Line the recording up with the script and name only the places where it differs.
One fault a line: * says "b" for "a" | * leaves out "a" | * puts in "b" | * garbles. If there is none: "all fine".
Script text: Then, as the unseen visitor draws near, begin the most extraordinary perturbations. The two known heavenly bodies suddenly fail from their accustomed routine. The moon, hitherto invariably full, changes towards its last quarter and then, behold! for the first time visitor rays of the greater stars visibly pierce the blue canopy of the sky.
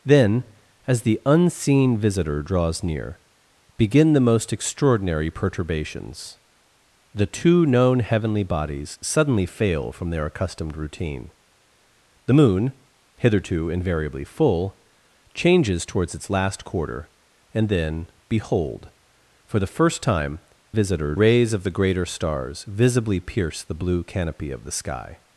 all fine